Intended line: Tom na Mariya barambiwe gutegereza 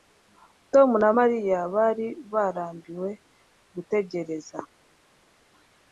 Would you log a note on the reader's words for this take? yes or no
yes